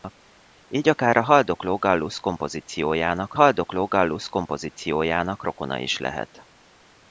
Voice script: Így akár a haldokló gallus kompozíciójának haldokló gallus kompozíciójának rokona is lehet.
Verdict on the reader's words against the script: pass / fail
pass